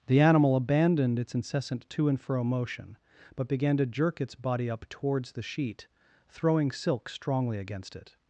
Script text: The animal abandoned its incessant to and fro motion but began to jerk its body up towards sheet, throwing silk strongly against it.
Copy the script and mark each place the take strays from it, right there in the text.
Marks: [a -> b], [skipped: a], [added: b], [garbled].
The animal abandoned its incessant to and fro motion but began to jerk its body up towards [added: the] sheet, throwing silk strongly against it.